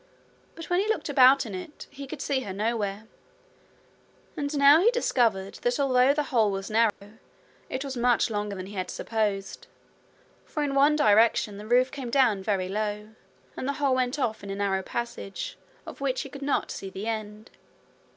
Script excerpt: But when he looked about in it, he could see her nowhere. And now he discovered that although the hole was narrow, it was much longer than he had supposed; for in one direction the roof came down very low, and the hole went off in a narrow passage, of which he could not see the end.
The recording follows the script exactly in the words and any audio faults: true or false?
false